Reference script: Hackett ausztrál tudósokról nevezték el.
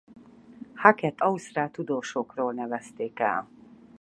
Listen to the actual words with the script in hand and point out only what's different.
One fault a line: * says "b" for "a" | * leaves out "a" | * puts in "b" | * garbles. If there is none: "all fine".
all fine